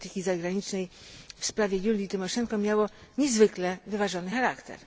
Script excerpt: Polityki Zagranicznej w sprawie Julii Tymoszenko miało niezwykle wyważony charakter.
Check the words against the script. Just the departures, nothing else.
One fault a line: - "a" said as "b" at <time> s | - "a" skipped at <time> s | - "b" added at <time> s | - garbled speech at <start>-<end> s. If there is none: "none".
none